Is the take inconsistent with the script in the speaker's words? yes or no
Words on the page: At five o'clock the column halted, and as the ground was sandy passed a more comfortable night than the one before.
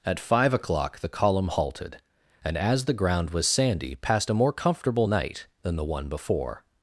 no